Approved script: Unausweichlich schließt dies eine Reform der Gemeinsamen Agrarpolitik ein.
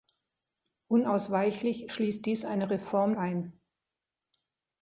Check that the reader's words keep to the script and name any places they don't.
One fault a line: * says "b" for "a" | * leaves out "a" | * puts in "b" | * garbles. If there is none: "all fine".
* leaves out "der Gemeinsamen Agrarpolitik"